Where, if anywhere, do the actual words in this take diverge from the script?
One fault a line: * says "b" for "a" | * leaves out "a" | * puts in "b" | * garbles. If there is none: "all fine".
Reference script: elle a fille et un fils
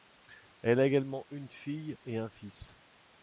* puts in "également une"